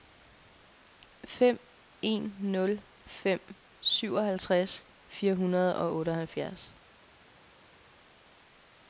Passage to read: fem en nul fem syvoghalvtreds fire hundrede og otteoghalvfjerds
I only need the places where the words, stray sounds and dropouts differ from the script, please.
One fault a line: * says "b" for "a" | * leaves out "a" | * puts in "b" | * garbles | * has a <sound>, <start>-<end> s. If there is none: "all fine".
all fine